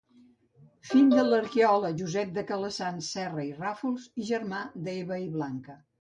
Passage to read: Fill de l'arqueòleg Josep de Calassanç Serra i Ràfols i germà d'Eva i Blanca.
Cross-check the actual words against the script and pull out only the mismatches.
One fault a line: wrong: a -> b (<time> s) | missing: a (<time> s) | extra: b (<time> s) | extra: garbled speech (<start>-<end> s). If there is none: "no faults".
no faults